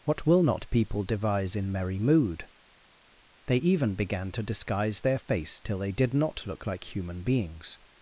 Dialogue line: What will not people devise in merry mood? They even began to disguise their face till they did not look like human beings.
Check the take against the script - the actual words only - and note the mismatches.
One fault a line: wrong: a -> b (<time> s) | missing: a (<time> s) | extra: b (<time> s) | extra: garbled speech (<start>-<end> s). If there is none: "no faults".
no faults